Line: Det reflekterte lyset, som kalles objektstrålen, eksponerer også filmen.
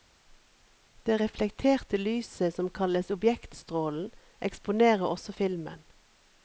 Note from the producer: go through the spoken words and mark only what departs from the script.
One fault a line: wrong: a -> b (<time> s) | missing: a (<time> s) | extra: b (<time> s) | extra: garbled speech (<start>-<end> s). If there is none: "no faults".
no faults